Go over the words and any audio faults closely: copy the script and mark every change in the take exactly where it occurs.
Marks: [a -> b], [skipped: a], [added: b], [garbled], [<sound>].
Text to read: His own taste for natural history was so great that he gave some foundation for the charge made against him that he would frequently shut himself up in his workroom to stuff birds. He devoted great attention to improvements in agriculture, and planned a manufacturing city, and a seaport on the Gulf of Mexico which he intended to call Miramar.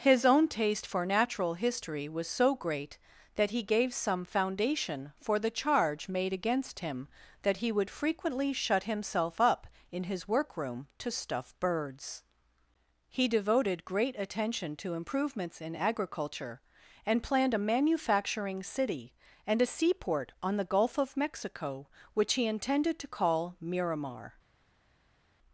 His own taste for natural history was so great that he gave some foundation for the charge made against him that he would frequently shut himself up in his workroom to stuff birds. He devoted great attention to improvements in agriculture, and planned a manufacturing city, and a seaport on the Gulf of Mexico which he intended to call Miramar.